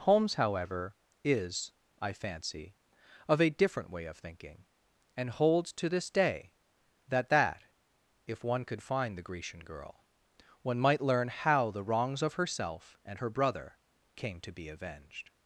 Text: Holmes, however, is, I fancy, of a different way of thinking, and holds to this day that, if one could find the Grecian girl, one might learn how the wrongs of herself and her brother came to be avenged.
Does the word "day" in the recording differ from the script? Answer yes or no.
no